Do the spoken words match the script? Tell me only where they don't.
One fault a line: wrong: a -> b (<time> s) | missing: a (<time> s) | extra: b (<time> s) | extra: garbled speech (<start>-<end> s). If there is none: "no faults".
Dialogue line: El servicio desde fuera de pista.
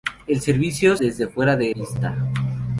no faults